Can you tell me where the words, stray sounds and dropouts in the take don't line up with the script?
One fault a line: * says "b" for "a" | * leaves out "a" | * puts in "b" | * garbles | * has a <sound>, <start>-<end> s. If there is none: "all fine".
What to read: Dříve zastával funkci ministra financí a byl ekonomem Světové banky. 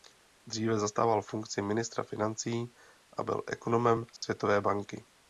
* has a dropout, 4.2-4.2 s